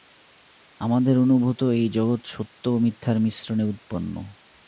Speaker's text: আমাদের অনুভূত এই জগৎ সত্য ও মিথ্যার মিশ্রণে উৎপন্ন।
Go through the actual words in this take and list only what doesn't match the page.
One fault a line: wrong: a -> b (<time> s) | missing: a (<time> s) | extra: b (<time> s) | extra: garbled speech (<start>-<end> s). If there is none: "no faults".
no faults